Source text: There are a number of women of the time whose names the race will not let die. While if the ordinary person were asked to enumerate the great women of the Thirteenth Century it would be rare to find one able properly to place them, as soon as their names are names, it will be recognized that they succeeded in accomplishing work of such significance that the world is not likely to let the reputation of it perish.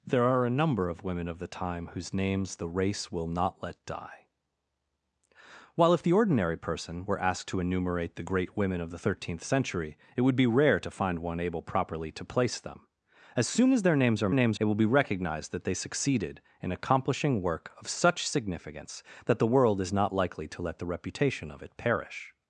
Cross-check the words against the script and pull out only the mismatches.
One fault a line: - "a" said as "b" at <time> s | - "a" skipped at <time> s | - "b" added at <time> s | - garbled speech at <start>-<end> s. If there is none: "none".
none